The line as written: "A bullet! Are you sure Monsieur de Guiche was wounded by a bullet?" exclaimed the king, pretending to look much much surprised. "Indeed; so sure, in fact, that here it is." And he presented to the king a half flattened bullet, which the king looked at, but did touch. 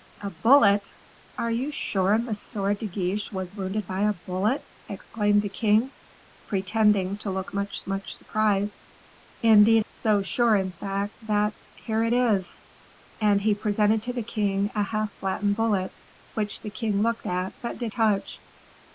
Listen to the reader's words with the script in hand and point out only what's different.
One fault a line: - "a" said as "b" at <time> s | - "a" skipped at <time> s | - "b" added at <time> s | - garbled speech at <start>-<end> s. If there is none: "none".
none